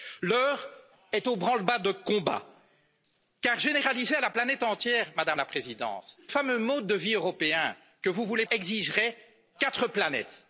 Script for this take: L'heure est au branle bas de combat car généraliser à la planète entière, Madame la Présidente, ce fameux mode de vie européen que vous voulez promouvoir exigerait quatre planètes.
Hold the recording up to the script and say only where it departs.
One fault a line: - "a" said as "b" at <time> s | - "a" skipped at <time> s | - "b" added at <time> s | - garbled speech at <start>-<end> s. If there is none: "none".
- "ce" skipped at 6.2 s
- "promouvoir" skipped at 8.4 s